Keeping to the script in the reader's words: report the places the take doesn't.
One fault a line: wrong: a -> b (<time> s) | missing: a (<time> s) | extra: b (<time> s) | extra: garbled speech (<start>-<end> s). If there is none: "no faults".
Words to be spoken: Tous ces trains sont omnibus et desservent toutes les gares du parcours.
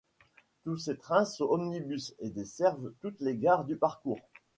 no faults